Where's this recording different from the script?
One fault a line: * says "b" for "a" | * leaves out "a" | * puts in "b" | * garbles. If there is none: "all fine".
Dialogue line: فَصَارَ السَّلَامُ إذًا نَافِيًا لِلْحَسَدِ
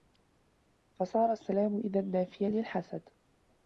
all fine